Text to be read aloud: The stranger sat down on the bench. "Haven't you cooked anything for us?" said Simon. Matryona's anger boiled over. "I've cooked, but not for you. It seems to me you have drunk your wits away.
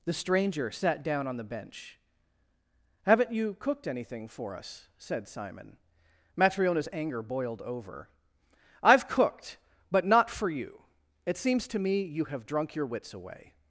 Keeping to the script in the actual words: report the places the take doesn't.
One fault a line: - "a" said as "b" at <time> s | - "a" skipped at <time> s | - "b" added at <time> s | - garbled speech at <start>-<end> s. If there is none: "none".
none